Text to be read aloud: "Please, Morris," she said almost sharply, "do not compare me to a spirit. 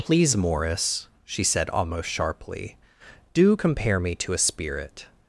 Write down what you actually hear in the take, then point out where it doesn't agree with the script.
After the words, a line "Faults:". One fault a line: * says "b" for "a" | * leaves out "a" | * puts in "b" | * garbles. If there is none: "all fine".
"Please, Morris," she said almost sharply, "do compare me to a spirit.
Faults:
* leaves out "not"